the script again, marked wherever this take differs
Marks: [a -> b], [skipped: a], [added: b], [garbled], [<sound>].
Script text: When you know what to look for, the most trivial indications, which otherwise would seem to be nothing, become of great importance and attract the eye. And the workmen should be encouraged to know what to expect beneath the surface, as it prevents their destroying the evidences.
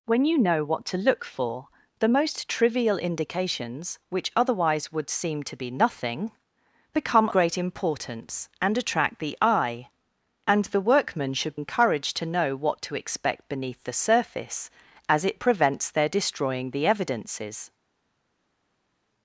When you know what to look for, the most trivial indications, which otherwise would seem to be nothing, become [skipped: of] great importance and attract the eye. And the workmen should [skipped: be] encouraged to know what to expect beneath the surface, as it prevents their destroying the evidences.